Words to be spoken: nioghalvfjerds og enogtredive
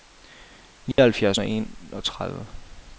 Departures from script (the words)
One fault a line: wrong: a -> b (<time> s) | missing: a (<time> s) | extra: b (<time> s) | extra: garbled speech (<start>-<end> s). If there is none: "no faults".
no faults